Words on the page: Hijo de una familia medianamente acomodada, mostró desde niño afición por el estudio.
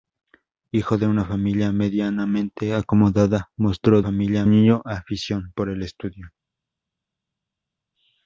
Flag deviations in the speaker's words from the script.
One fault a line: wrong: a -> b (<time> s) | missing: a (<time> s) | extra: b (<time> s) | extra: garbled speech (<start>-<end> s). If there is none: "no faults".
wrong: desde -> familia (4.0 s)